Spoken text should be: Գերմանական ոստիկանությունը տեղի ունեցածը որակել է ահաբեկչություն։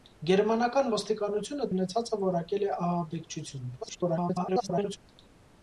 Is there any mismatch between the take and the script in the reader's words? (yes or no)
yes